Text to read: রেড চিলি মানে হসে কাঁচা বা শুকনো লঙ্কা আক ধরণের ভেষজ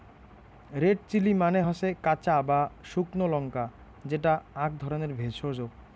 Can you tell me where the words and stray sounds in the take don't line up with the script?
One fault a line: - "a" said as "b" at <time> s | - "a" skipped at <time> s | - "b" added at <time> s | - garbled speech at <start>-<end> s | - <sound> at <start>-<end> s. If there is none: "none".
- "যেটা" added at 4.0 s